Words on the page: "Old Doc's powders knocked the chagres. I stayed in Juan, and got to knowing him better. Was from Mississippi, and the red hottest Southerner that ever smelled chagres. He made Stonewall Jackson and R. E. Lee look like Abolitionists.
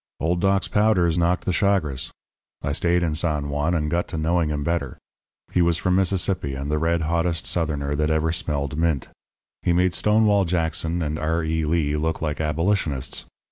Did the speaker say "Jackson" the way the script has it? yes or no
yes